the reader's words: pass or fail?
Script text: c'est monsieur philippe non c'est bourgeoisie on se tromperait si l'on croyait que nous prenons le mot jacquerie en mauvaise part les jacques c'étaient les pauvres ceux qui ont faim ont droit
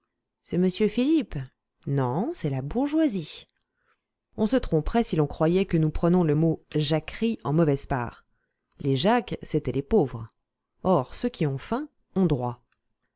fail